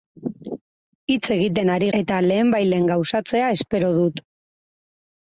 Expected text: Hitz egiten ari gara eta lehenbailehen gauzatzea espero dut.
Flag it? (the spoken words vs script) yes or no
yes